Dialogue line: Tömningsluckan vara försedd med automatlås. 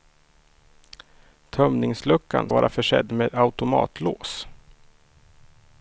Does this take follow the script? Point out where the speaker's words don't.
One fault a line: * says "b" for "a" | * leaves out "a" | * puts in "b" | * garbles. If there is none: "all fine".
all fine